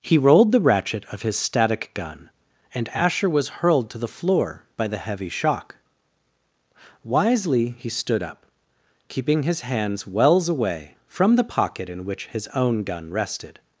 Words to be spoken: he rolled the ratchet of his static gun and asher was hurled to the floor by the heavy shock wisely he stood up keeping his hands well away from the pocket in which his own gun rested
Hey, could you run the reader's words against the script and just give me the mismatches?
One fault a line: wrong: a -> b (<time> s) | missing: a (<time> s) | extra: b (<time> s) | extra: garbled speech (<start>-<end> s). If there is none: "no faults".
wrong: well -> wells (10.1 s)